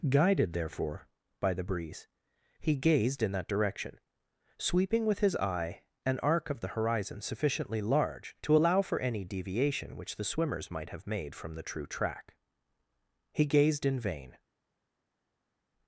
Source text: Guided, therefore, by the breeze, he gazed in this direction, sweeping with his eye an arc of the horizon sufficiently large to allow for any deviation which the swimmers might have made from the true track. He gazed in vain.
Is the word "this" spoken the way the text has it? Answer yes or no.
no